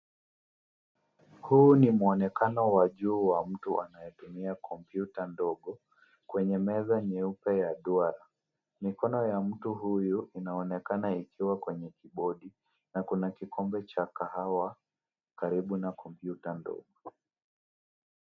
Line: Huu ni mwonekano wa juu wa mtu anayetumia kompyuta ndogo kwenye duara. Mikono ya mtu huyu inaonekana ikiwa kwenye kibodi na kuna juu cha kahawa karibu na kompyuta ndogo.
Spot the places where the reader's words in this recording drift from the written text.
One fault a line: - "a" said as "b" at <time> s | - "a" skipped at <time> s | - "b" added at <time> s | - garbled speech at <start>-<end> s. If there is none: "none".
- "meza nyeupe ya" added at 6.6 s
- "juu" said as "kikombe" at 13.3 s